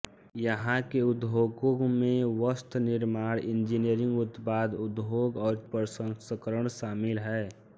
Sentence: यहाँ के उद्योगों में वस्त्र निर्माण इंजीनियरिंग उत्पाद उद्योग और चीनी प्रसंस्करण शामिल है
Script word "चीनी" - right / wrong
wrong